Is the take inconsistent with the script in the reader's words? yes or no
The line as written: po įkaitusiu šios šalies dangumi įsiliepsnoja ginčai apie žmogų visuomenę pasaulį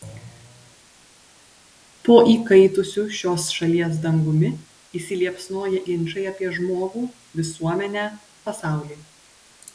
no